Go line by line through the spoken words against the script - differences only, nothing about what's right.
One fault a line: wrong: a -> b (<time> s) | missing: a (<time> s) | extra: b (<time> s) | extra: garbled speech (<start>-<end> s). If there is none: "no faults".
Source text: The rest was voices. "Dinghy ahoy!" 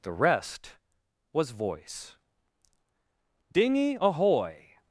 wrong: voices -> voice (1.5 s)